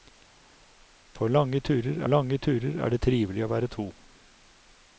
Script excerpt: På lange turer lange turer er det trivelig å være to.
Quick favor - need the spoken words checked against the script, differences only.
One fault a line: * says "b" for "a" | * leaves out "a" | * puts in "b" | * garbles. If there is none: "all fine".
all fine